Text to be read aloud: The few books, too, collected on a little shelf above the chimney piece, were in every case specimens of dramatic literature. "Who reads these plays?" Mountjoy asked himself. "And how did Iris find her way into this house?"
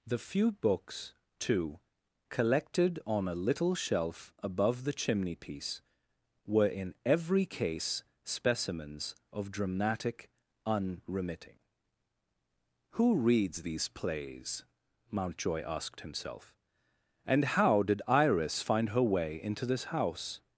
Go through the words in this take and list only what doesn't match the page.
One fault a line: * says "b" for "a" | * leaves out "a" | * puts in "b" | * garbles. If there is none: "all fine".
* says "unremitting" for "literature"